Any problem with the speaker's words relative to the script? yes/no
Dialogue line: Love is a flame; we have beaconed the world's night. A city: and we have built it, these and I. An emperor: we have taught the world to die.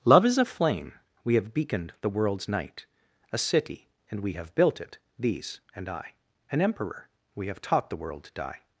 no